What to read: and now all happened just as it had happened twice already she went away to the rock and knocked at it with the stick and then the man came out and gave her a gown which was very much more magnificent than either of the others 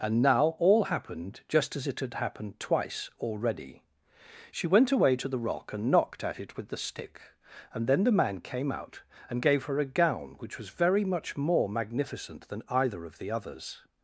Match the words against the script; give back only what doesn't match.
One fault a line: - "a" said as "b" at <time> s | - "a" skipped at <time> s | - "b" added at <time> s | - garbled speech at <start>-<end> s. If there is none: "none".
none